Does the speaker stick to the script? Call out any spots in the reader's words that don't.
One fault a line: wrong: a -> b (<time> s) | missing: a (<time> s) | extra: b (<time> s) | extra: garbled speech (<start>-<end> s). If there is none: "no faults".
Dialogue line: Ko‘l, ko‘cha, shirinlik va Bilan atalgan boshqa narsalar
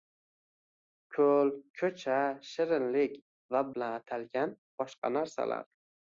no faults